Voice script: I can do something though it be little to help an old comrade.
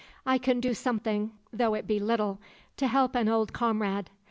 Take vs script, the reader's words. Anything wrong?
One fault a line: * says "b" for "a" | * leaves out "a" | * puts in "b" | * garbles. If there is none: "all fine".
all fine